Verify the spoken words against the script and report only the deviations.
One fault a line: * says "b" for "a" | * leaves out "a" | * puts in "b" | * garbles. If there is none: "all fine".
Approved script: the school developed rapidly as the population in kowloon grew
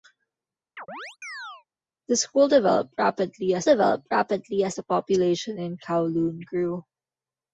* puts in "developed rapidly as"